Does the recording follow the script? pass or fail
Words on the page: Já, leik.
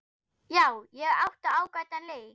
fail